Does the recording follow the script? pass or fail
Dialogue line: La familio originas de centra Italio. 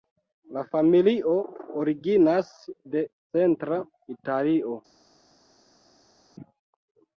pass